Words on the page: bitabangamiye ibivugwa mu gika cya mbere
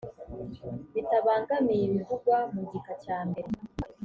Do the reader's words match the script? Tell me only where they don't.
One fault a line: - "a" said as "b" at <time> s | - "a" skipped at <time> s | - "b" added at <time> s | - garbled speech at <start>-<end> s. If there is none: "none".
none